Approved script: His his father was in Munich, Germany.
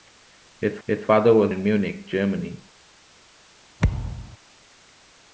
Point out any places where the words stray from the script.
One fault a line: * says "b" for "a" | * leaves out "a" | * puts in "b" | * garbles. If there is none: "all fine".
all fine